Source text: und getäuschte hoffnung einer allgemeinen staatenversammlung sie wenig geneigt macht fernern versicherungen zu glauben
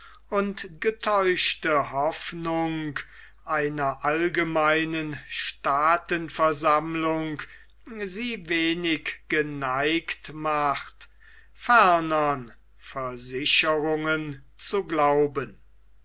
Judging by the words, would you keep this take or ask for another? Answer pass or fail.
pass